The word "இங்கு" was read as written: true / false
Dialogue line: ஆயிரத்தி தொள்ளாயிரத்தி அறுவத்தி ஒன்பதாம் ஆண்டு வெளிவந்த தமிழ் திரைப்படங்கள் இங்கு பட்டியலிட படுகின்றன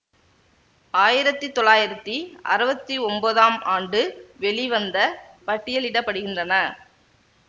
false